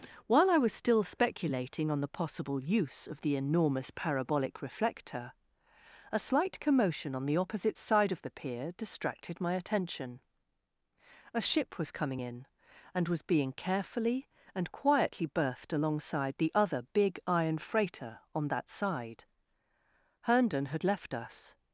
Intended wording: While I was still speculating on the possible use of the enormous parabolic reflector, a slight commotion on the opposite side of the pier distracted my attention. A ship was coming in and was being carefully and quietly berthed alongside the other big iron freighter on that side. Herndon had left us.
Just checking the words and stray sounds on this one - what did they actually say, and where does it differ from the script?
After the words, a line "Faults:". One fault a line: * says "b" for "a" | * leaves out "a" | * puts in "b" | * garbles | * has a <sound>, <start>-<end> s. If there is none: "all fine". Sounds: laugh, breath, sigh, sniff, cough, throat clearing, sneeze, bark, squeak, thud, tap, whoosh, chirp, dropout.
While I was still speculating on the possible use of the enormous parabolic reflector, a slight commotion on the opposite side of the pier distracted my attention. A ship was coming in and was being carefully and quietly berthed alongside the other big iron freighter on that side. Herndon had left us.
Faults:
all fine